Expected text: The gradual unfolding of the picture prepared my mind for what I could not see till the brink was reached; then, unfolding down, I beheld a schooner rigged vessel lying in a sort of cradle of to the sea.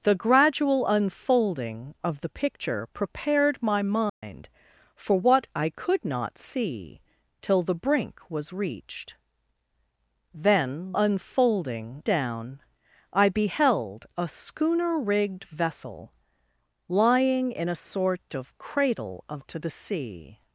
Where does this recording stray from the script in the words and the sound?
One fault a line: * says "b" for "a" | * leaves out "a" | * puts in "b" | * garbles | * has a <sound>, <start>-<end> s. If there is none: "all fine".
* has a dropout, 4.1-4.2 s